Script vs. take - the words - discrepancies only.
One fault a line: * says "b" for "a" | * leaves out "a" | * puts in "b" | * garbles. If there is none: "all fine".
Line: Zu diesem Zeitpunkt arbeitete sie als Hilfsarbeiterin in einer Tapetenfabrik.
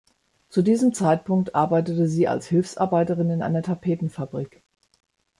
all fine